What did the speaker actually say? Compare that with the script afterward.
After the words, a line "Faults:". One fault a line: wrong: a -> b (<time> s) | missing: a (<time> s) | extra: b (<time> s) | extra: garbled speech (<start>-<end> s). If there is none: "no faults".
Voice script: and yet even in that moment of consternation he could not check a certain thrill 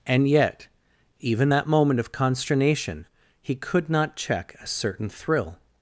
and yet even that moment of consternation he could not check a certain thrill
Faults:
missing: in (1.5 s)